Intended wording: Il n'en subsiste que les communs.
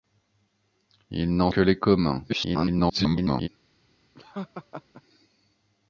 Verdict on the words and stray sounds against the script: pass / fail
fail